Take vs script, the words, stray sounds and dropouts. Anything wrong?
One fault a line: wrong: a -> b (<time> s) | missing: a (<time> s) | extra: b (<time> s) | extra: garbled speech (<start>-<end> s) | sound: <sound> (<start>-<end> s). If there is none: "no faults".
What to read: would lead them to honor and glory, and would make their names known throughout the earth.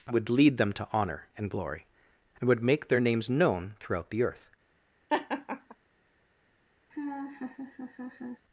sound: laugh (5.1-5.8 s)
sound: laugh (6.9-8.4 s)